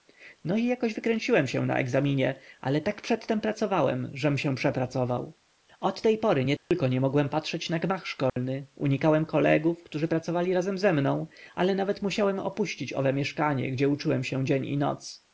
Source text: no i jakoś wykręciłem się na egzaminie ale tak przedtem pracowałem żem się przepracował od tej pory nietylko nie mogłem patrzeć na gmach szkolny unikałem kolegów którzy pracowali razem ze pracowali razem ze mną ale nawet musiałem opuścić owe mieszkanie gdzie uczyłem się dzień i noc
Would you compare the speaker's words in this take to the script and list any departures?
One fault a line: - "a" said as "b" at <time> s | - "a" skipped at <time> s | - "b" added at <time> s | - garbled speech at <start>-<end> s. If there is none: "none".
- "pracowali razem ze" skipped at 10.9 s